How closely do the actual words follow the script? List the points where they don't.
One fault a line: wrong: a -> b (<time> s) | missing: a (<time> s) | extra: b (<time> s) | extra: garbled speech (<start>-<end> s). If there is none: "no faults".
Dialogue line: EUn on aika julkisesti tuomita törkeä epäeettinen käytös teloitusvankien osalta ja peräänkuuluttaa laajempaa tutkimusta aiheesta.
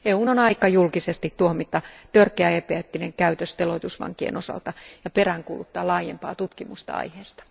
no faults